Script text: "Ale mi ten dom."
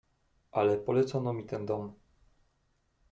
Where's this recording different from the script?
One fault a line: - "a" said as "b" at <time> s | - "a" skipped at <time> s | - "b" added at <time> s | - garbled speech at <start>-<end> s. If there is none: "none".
- "polecono" added at 0.8 s